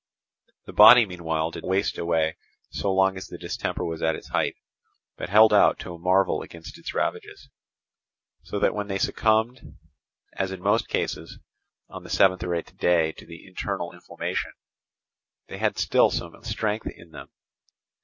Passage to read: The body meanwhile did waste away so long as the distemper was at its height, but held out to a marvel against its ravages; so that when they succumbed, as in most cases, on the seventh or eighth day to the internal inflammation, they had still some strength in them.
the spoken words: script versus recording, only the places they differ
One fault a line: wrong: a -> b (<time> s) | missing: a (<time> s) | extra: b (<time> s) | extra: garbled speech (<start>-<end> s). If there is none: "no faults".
no faults